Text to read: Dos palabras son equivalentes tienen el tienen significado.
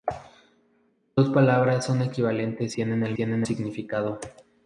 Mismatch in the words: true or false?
false